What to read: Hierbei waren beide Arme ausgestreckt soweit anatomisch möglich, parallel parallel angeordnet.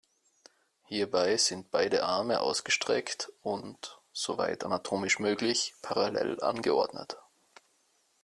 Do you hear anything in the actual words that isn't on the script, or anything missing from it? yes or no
yes